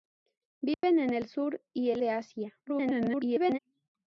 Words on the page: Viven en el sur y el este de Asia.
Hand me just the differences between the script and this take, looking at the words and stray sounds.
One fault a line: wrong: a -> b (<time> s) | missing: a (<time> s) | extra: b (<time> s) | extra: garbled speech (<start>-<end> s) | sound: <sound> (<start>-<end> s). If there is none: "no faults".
sound: dropout (0.7-0.8 s)
missing: este (2.0 s)
extra: garbled speech (2.7-3.6 s)